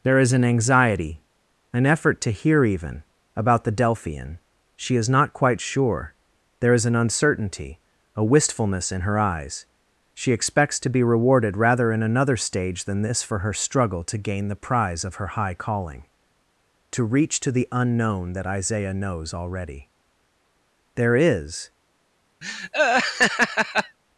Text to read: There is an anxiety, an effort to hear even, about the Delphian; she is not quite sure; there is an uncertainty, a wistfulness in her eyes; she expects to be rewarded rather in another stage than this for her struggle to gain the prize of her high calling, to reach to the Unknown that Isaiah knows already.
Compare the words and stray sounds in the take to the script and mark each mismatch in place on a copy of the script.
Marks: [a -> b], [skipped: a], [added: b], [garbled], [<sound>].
There is an anxiety, an effort to hear even, about the Delphian; she is not quite sure; there is an uncertainty, a wistfulness in her eyes; she expects to be rewarded rather in another stage than this for her struggle to gain the prize of her high calling, to reach to the Unknown that Isaiah knows already. [added: There is] [laugh]